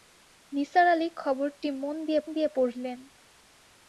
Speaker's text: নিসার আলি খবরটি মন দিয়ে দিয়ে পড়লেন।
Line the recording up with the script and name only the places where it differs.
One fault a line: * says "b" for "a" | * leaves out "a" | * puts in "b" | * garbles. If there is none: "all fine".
all fine